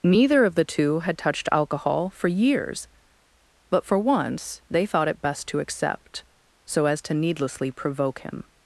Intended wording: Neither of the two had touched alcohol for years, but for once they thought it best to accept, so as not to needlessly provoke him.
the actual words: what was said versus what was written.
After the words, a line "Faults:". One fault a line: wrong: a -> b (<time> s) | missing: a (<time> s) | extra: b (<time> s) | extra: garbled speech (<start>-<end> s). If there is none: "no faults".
Neither of the two had touched alcohol for years, but for once they thought it best to accept, so as to needlessly provoke him.
Faults:
missing: not (7.0 s)